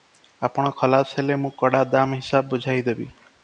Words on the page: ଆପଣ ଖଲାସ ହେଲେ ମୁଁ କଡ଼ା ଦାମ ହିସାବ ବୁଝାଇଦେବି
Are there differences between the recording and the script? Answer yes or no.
no